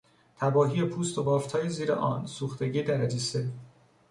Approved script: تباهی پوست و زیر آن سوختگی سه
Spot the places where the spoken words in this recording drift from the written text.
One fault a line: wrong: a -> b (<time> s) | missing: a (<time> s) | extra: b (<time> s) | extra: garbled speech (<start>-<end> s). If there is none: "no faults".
extra: بافتهای (1.2 s)
extra: درجه (2.8 s)